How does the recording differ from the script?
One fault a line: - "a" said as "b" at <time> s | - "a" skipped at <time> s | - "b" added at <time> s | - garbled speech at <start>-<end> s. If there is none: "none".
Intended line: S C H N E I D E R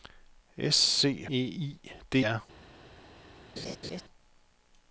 - "H N" skipped at 1.3 s
- "E" skipped at 2.2 s